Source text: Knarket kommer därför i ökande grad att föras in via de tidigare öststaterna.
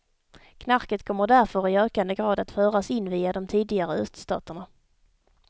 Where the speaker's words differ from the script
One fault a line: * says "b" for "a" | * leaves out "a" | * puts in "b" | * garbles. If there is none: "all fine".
all fine